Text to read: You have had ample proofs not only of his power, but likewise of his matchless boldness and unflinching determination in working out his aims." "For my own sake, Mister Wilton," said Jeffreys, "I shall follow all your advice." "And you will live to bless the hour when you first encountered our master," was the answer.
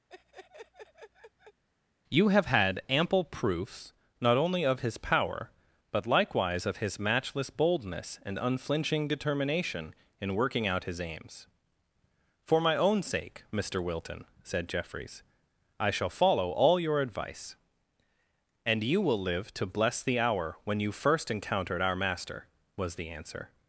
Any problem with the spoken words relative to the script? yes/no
no